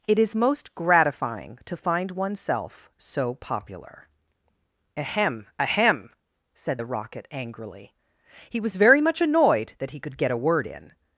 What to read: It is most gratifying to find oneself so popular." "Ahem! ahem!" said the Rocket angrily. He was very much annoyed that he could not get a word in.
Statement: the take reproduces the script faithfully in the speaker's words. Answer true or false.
false